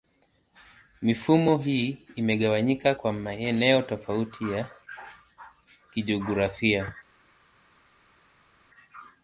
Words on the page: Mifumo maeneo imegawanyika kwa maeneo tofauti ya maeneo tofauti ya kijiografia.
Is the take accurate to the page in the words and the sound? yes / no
no